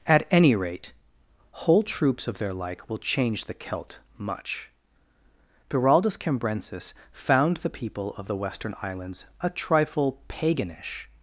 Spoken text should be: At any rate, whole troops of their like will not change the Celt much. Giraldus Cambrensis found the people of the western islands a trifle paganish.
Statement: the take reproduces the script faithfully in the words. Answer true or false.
false